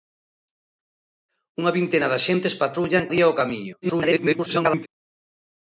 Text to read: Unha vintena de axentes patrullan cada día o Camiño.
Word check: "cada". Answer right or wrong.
wrong